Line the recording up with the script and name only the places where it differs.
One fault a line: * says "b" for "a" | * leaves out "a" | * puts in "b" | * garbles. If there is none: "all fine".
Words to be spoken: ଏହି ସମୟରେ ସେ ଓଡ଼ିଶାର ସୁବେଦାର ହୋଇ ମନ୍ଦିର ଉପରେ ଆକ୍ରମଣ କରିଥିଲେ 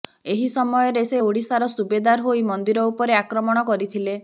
all fine